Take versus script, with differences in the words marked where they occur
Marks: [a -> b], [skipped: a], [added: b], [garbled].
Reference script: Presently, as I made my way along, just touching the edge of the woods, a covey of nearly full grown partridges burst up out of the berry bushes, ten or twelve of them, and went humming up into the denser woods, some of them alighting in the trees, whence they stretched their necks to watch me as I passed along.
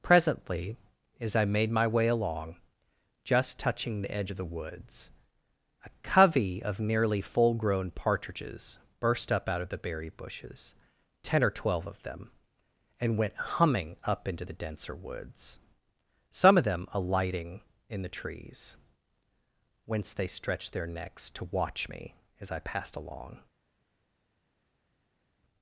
Presently, as I made my way along, just touching the edge of the woods, a covey of nearly full grown partridges burst up out of the berry bushes, ten or twelve of them, and went humming up into the denser woods, some of them alighting in the trees, whence they stretched their necks to watch me as I passed along.